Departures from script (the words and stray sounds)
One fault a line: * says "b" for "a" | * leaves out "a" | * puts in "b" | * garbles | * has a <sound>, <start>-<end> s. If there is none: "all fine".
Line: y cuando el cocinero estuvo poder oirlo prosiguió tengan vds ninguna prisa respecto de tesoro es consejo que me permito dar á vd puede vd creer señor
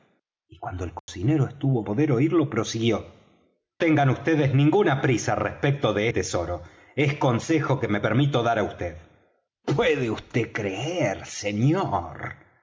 * has a dropout, 1.0-1.1 s